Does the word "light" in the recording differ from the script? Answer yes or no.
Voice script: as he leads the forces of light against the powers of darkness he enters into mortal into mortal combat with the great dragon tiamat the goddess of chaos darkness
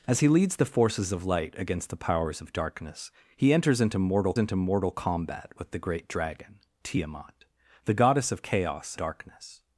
no